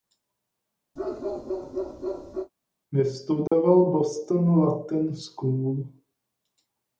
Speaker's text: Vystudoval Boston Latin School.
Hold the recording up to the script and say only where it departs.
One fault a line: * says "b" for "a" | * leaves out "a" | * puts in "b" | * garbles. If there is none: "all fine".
all fine